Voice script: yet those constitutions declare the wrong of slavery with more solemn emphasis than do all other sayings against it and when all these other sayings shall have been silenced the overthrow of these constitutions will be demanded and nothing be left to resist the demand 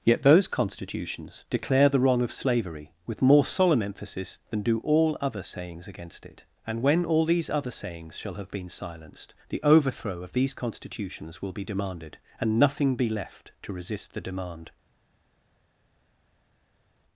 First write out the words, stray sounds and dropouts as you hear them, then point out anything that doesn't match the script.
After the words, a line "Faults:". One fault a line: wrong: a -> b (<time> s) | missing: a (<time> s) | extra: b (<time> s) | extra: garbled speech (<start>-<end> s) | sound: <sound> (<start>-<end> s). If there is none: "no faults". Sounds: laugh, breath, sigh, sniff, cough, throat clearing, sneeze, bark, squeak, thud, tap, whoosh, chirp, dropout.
yet those constitutions declare the wrong of slavery with more solemn emphasis than do all other sayings against it and when all these other sayings shall have been silenced the overthrow of these constitutions will be demanded and nothing be left to resist the demand
Faults:
no faults